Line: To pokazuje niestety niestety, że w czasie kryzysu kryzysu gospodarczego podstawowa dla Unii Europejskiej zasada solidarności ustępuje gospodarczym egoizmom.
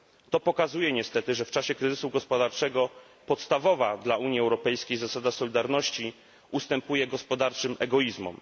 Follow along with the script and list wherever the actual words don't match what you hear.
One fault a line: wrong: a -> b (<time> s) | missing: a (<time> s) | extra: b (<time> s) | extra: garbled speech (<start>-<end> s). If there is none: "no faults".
missing: niestety (1.4 s)
missing: kryzysu (2.1 s)